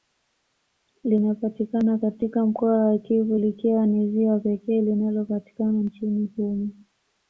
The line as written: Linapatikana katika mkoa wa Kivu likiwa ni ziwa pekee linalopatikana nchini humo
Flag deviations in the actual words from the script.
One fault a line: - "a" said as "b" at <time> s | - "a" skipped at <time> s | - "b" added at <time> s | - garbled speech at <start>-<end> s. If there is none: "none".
none